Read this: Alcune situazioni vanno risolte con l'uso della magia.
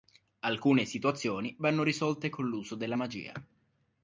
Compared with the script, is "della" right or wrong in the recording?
right